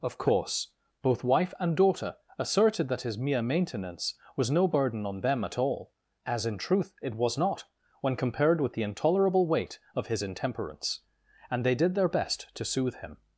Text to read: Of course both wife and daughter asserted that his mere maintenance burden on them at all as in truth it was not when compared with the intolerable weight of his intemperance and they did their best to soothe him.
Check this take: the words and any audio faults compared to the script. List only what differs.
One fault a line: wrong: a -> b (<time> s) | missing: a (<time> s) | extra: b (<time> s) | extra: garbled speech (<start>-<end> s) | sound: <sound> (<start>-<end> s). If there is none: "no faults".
extra: was no (4.3 s)